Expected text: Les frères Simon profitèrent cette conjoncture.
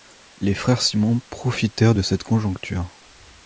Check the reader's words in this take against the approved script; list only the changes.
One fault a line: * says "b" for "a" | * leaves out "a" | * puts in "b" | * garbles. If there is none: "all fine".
* puts in "de"